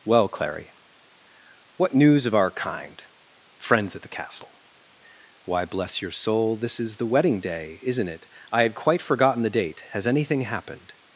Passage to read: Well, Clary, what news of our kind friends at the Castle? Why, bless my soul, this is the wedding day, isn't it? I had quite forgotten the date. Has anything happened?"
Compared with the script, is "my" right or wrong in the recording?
wrong